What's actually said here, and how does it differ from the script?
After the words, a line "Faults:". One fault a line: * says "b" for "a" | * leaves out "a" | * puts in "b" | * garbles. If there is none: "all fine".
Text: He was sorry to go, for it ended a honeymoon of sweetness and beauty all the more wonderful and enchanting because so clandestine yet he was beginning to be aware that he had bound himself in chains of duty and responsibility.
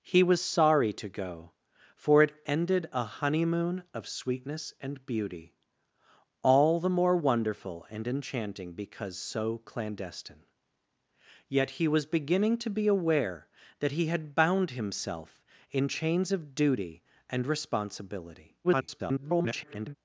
He was sorry to go, for it ended a honeymoon of sweetness and beauty all the more wonderful and enchanting because so clandestine yet he was beginning to be aware that he had bound himself in chains of duty and responsibility. [garbled]
Faults:
* garbles